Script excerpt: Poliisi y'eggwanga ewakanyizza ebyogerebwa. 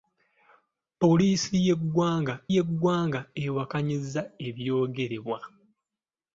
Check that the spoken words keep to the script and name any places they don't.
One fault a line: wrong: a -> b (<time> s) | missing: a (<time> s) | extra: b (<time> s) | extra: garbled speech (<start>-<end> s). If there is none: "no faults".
extra: y'eggwanga (2.5 s)